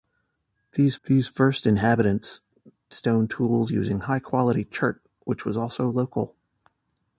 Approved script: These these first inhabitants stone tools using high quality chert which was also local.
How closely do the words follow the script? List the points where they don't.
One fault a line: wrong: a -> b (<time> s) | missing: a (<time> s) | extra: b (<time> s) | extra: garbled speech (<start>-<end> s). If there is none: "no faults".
no faults